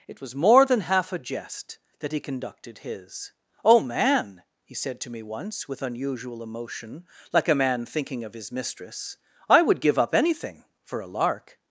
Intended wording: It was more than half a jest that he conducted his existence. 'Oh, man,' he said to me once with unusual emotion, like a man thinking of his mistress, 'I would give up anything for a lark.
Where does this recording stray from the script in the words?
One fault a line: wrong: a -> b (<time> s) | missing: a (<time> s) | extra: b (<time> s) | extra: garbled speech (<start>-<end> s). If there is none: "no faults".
missing: existence (3.3 s)